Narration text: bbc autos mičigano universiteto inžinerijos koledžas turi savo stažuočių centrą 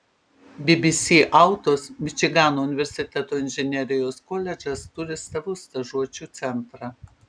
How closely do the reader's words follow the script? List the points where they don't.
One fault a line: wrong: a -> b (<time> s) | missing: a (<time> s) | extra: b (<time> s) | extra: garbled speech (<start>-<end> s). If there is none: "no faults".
no faults